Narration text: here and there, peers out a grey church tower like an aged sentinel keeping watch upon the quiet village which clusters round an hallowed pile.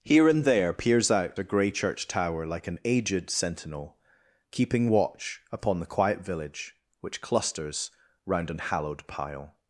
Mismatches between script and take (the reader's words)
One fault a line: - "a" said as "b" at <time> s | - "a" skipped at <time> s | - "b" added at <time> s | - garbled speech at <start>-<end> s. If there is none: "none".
none